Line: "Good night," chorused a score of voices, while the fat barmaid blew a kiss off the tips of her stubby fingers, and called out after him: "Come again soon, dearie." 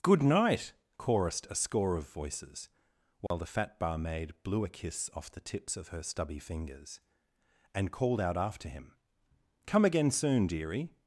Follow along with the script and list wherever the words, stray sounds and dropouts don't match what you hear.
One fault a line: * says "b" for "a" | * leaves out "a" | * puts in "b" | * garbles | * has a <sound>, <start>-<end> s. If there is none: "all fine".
* has a dropout, 3.3-3.3 s